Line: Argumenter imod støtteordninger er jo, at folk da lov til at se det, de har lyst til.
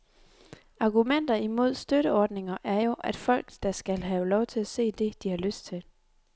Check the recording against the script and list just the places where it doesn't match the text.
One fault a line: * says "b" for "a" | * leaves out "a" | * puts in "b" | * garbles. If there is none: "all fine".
* puts in "skal have"